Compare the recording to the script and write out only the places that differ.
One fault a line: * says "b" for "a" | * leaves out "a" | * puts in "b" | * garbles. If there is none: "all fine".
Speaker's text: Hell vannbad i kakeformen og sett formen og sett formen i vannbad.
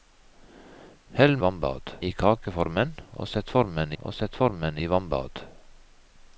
all fine